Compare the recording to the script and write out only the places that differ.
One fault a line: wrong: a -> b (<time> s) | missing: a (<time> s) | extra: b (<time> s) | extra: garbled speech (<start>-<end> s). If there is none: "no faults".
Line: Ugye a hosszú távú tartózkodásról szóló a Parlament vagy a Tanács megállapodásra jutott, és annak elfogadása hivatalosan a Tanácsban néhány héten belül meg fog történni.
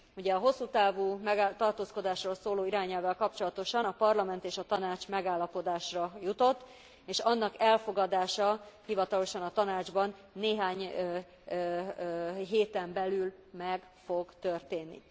extra: irányelvvel kapcsolatosan (2.6 s)
wrong: vagy -> és (4.4 s)